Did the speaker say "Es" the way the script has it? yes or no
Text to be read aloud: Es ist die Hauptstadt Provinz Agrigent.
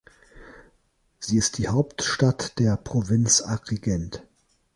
no